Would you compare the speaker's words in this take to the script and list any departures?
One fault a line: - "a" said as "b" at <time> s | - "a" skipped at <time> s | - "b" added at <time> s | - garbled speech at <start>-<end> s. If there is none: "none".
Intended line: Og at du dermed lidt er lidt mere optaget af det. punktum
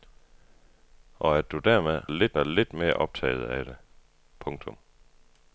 none